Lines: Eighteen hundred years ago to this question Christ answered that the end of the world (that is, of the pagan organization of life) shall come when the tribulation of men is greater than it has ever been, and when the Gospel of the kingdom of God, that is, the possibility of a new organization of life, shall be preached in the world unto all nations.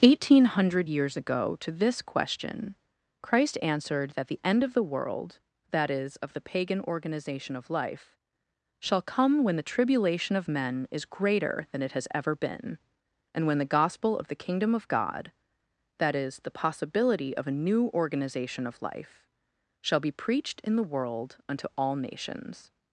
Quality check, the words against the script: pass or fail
pass